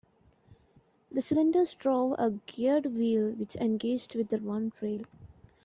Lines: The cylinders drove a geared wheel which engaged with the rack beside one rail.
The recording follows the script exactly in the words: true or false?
false